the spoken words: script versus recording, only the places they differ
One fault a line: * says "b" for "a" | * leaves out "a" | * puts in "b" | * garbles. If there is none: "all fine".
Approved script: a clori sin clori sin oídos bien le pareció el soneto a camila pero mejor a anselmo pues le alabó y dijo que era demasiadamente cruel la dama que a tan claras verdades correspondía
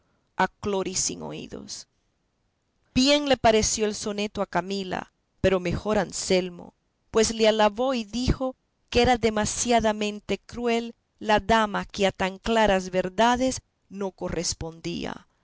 * leaves out "clori sin"
* puts in "no"